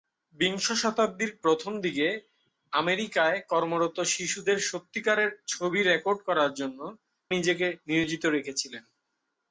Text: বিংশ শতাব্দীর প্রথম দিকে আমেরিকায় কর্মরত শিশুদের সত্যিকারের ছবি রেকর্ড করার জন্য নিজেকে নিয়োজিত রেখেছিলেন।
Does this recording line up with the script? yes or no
yes